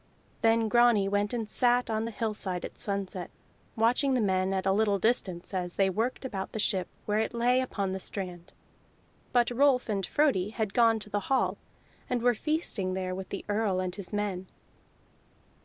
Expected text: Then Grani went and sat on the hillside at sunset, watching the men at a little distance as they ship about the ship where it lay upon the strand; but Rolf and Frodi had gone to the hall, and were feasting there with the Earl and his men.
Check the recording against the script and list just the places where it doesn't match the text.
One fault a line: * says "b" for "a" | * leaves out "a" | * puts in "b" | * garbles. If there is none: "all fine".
* says "worked" for "ship"